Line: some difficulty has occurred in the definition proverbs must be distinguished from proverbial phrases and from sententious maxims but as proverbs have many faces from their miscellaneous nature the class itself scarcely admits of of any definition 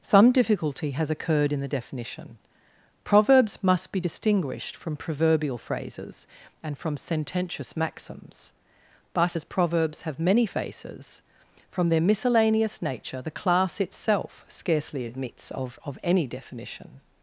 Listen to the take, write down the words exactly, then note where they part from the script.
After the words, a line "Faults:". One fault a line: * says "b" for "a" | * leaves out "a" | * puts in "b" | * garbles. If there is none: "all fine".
some difficulty has occurred in the definition proverbs must be distinguished from proverbial phrases and from sententious maxims but as proverbs have many faces from their miscellaneous nature the class itself scarcely admits of of any definition
Faults:
all fine